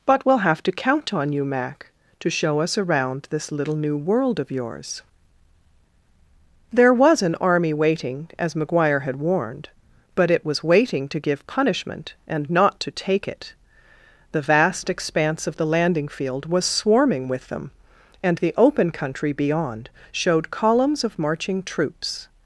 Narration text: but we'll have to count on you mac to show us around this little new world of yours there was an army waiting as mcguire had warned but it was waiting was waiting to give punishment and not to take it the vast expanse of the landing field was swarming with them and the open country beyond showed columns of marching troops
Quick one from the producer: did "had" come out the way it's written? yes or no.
yes